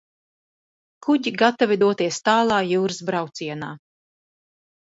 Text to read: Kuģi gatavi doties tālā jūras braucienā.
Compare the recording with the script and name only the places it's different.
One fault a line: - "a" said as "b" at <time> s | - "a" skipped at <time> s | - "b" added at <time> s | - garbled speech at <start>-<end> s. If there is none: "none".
none